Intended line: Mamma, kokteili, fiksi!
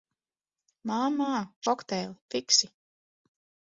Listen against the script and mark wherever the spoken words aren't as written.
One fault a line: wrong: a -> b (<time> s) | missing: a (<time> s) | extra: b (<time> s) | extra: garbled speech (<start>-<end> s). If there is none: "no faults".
no faults